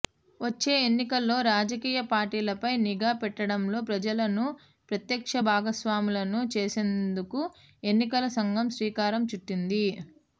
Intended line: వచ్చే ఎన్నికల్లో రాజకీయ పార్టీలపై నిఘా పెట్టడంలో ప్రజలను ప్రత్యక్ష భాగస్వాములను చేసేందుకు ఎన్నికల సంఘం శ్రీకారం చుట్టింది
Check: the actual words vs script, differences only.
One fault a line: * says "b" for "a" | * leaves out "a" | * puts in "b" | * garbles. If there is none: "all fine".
all fine